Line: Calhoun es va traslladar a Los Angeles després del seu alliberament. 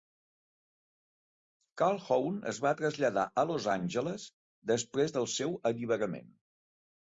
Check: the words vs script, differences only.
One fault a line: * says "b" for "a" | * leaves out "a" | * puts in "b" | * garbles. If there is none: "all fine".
all fine